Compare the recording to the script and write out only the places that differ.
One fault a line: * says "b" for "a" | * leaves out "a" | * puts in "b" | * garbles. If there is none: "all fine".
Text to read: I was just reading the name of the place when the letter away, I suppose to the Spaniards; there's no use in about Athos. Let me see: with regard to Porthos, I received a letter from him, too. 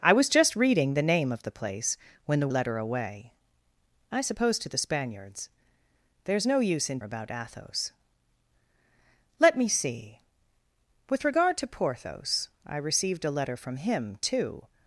all fine